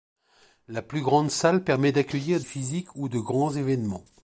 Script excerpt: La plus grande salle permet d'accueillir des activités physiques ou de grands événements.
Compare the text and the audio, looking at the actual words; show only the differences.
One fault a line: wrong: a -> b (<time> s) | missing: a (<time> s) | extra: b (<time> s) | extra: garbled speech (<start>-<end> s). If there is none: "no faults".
missing: des activités (2.4 s)